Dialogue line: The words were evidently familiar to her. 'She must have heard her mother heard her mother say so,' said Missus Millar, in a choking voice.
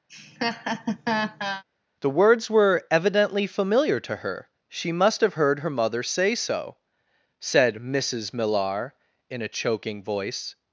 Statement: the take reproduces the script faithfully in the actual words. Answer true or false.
false